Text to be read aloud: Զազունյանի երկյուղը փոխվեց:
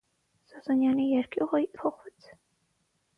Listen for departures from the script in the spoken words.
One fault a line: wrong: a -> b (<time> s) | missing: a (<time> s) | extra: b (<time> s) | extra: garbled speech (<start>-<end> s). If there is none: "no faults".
no faults